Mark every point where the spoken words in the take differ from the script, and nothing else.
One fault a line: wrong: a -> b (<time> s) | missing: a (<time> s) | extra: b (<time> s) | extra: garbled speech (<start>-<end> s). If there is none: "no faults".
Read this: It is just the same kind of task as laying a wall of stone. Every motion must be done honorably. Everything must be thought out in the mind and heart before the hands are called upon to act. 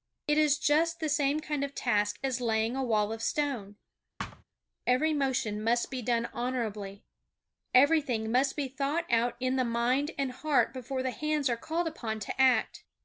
no faults